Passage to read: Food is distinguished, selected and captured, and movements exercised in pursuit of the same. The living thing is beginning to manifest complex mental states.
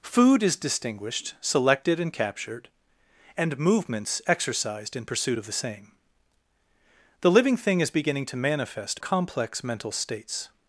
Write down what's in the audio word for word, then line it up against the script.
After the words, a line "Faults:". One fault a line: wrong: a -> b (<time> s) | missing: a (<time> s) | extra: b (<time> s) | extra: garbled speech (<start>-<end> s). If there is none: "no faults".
Food is distinguished, selected and captured, and movements exercised in pursuit of the same. The living thing is beginning to manifest complex mental states.
Faults:
no faults